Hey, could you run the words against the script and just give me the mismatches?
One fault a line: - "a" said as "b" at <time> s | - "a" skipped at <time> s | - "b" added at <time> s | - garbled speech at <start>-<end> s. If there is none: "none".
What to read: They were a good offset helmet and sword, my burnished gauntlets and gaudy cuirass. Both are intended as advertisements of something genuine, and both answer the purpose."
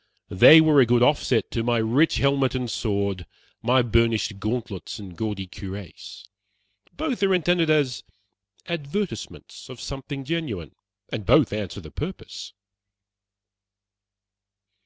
- "to my rich" added at 1.5 s